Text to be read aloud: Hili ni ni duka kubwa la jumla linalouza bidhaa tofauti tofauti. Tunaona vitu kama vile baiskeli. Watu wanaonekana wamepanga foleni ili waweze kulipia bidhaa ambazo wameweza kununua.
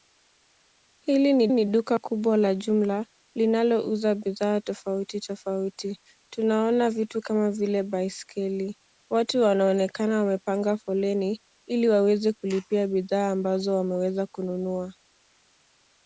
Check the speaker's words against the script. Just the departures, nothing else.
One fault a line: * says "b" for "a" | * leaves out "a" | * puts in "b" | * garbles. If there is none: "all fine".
all fine